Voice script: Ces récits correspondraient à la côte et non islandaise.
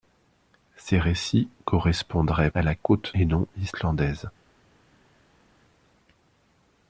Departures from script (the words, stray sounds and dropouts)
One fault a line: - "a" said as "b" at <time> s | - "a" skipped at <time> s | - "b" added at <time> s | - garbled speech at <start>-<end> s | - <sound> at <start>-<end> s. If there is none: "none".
none